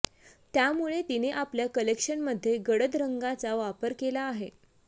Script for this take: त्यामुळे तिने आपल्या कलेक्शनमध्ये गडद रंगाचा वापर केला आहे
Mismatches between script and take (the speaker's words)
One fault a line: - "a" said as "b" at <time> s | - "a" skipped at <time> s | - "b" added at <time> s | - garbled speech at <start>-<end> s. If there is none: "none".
none